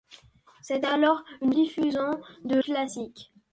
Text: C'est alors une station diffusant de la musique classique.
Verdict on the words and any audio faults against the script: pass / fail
fail